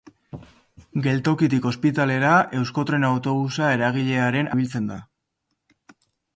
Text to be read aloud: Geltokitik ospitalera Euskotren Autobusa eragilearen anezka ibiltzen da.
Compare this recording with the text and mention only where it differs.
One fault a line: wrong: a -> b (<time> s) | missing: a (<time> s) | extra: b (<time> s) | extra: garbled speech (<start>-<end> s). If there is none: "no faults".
missing: anezka (4.5 s)